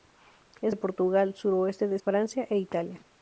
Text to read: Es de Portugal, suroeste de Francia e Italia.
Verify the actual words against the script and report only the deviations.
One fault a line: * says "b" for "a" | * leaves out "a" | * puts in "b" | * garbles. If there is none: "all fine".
all fine